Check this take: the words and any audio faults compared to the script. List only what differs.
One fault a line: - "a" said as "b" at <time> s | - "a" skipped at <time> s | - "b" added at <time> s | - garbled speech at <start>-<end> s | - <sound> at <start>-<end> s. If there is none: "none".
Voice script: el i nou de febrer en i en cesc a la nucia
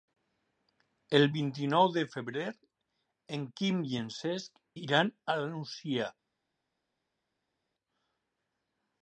- "vint" added at 1.3 s
- "quim" added at 3.6 s
- "iran" added at 4.8 s